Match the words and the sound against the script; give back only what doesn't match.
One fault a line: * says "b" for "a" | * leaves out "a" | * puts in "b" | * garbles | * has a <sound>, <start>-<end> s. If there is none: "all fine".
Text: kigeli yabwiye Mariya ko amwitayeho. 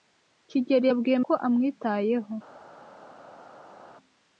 * leaves out "Mariya"